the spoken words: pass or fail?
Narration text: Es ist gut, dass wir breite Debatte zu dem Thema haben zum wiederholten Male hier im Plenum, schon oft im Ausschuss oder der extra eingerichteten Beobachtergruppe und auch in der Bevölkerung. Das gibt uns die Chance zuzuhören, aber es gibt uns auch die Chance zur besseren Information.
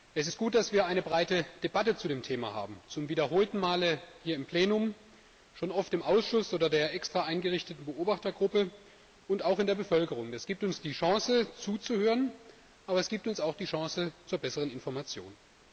fail